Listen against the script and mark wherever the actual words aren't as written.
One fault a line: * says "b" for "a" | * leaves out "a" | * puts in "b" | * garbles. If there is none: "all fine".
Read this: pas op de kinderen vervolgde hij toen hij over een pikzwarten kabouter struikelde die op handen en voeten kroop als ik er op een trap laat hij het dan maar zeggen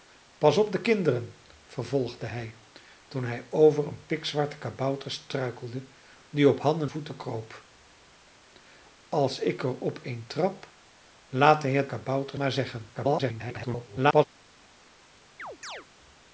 * leaves out "en"
* says "kabouter" for "dan"
* garbles